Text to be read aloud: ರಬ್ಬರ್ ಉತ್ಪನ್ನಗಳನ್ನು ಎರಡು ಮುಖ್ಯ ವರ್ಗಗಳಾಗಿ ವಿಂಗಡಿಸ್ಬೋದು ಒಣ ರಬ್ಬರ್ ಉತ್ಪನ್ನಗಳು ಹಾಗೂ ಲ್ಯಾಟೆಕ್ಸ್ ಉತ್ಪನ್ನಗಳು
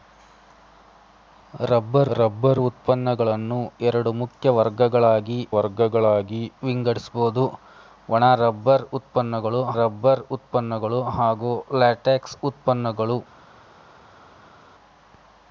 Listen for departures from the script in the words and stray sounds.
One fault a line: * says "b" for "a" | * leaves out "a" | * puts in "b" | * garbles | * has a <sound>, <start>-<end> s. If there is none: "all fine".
* puts in "ರಬ್ಬರ್"
* puts in "ವರ್ಗಗಳಾಗಿ"
* puts in "ರಬ್ಬರ್ ಉತ್ಪನ್ನಗಳು"